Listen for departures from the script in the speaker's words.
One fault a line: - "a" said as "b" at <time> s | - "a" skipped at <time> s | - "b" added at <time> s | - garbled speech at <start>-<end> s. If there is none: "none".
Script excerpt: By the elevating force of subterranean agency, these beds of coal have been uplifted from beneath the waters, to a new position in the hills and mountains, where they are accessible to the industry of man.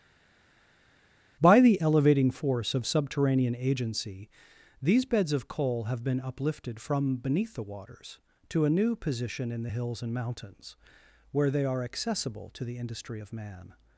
none